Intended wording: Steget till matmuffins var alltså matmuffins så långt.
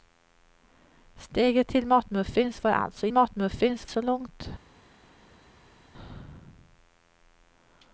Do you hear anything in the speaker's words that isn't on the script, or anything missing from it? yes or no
no